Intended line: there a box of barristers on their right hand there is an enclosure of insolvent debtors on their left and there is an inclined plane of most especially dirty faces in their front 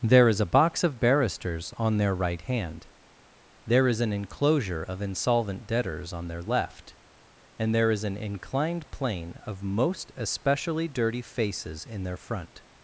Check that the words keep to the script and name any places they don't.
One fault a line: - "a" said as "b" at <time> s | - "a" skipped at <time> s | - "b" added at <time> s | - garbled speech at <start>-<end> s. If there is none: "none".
- "is" added at 0.3 s